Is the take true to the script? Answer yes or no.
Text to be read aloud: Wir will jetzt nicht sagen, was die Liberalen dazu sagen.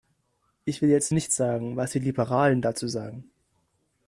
no